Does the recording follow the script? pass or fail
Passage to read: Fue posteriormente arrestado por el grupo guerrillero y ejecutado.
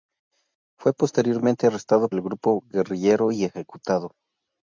fail